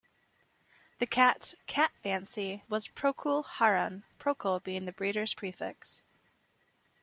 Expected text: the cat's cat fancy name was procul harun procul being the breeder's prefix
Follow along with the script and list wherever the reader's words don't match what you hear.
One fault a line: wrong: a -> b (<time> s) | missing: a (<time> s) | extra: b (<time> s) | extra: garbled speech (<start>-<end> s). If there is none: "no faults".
missing: name (2.6 s)